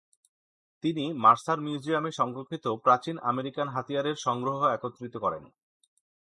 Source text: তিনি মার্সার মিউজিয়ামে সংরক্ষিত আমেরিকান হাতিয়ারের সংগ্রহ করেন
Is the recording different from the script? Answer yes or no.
yes